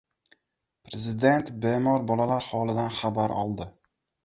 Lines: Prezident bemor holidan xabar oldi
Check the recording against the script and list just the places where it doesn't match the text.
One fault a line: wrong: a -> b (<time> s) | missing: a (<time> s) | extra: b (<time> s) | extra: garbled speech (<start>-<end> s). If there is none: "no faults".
extra: bolalar (2.1 s)